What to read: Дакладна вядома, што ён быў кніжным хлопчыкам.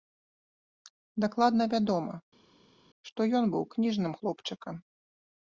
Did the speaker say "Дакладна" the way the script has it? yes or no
yes